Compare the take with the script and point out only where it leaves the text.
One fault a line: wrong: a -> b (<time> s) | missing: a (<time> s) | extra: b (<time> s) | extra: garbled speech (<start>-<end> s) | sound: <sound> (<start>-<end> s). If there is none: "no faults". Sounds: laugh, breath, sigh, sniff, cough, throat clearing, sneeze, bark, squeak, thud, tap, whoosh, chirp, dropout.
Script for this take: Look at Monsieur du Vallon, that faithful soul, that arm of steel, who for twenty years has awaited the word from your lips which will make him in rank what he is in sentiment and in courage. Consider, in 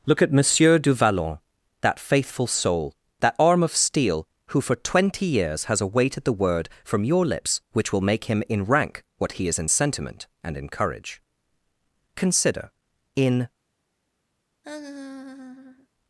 sound: laugh (14.6-15.9 s)